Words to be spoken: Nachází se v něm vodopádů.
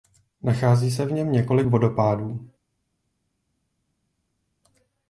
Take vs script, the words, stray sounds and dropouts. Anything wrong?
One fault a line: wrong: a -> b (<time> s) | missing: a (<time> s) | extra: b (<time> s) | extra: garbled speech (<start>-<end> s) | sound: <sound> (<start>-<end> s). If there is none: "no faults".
extra: několik (1.3 s)